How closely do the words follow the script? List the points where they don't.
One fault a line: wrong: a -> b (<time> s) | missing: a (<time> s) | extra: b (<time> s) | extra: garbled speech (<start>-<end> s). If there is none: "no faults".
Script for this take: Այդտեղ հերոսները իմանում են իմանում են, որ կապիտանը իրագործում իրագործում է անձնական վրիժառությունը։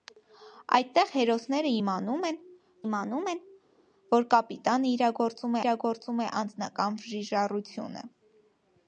no faults